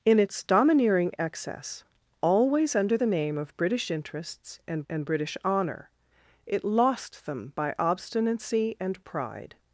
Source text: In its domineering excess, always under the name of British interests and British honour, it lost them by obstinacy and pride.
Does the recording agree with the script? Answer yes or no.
no